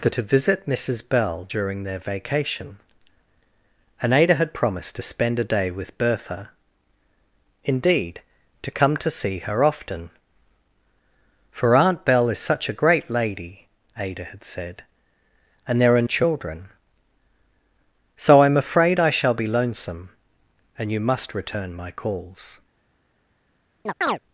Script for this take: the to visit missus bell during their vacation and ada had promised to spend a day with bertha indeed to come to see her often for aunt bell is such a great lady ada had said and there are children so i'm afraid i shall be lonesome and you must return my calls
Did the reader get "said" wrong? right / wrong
right